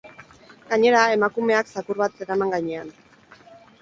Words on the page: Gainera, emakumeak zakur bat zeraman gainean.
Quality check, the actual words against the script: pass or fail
pass